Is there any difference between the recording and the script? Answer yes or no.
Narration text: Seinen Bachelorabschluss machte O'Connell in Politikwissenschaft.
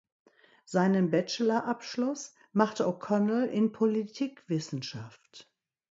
no